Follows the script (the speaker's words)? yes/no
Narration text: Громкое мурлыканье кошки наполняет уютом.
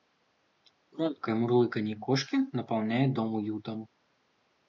no